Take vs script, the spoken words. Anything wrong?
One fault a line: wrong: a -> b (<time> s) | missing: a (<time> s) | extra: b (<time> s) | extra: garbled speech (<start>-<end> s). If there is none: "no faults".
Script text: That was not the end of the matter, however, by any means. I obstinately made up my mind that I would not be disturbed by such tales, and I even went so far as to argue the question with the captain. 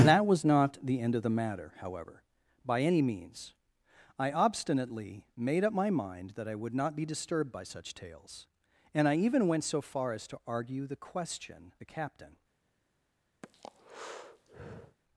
missing: with (11.7 s)